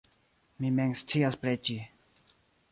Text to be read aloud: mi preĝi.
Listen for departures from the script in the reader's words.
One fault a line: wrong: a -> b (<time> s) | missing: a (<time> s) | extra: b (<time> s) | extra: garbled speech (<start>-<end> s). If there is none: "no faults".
extra: mem scias (0.8 s)